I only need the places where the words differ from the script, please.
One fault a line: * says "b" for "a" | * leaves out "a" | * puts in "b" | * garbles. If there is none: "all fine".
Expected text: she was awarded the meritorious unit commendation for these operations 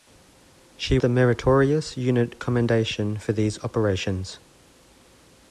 * leaves out "was awarded"